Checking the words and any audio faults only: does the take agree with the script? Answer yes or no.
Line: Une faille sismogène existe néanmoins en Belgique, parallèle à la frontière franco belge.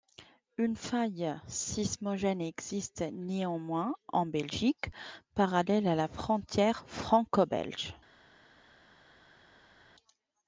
yes